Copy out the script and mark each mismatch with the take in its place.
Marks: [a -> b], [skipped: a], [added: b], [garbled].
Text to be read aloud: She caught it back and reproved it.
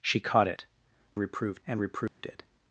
She caught it [back -> reproved] and reproved it.